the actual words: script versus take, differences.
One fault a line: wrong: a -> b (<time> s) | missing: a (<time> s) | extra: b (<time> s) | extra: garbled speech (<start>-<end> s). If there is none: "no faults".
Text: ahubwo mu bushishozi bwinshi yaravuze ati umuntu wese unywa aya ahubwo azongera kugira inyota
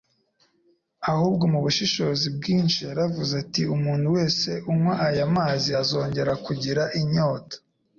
wrong: ahubwo -> mazi (5.3 s)